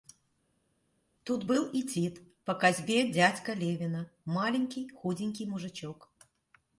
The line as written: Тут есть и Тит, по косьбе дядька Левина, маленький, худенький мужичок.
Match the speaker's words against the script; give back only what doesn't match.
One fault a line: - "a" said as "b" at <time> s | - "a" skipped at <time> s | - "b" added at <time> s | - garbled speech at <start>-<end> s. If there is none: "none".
- "есть" said as "был" at 1.5 s